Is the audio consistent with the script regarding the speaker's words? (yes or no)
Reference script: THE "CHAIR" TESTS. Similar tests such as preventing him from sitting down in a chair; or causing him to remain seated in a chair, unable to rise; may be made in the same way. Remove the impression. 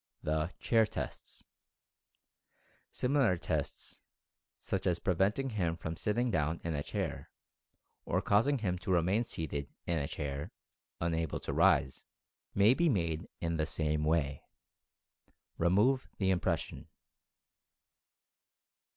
yes